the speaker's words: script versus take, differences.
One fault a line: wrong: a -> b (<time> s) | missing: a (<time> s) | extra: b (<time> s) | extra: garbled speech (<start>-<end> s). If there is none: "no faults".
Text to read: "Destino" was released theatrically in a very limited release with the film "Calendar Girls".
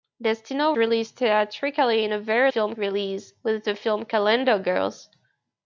missing: was (0.7 s)
wrong: limited -> film (2.5 s)